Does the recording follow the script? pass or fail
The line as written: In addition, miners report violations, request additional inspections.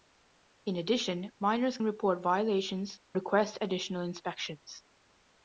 pass